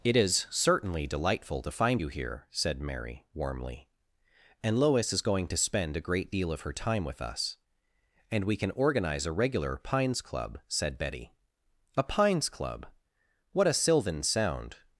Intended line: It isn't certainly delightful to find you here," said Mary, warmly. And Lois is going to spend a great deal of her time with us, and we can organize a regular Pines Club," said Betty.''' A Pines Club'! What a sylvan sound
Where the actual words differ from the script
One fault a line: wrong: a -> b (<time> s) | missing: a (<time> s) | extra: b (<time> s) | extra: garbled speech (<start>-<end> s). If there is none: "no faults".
wrong: isn't -> is (0.1 s)